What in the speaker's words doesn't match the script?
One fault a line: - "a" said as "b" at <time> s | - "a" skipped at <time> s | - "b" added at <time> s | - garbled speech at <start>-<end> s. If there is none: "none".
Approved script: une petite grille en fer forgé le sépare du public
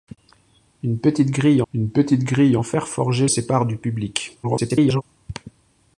- "une petite grille" added at 1.7 s
- "le" skipped at 3.3 s
- garbled speech at 4.4-5.0 s